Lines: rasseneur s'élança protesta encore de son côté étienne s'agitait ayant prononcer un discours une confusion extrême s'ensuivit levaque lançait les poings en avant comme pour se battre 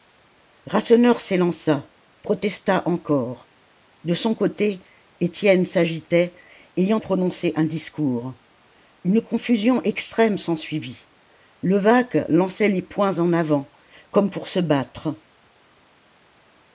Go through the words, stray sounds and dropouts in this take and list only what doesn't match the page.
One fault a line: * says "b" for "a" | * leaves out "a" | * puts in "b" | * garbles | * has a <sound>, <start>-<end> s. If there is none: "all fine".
all fine